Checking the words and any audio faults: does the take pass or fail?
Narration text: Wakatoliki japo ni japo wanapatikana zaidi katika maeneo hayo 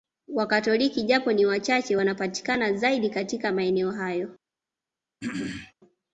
fail